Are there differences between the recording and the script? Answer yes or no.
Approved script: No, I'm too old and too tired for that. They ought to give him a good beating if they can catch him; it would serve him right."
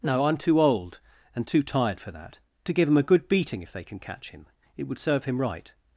yes